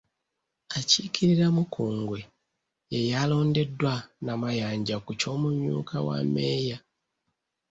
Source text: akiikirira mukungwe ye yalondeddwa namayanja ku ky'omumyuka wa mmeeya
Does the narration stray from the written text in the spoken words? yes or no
no